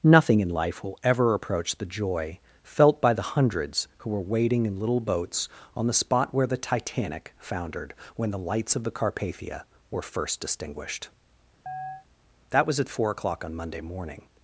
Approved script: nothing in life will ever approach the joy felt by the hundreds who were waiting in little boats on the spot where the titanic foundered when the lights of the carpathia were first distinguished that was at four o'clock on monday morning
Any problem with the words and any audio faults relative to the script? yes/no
yes